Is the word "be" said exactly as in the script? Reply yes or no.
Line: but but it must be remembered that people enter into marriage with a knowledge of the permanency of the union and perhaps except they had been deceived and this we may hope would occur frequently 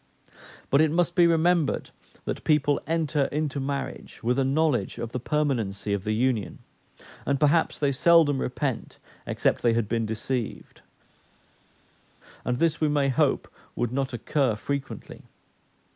yes